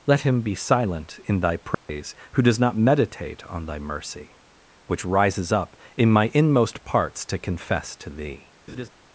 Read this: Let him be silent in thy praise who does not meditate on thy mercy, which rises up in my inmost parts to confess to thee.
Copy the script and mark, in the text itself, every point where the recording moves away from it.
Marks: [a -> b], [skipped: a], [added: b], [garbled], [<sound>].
Let him be silent in thy praise [dropout] who does not meditate on thy mercy, which rises up in my inmost parts to confess to thee. [laugh]